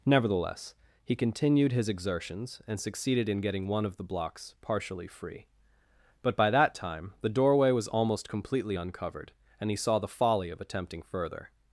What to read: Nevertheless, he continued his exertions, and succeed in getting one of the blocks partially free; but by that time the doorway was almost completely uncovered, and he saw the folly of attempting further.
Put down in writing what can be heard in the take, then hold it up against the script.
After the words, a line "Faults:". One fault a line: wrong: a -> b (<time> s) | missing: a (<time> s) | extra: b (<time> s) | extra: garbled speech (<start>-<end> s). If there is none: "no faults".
Nevertheless, he continued his exertions, and succeeded in getting one of the blocks partially free; but by that time the doorway was almost completely uncovered, and he saw the folly of attempting further.
Faults:
wrong: succeed -> succeeded (2.8 s)